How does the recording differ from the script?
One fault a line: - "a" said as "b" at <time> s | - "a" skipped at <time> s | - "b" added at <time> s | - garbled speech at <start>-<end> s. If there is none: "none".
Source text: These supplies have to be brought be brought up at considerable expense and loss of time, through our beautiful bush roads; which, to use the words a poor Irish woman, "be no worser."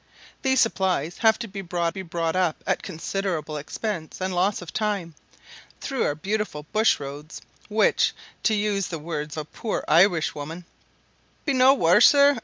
none